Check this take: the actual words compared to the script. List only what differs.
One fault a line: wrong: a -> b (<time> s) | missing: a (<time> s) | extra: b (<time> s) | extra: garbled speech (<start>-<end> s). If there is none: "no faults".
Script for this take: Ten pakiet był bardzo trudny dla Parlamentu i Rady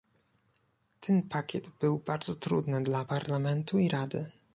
no faults